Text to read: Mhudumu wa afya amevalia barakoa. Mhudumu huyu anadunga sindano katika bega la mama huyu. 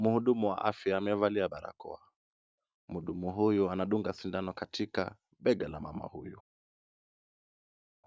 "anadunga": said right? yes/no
yes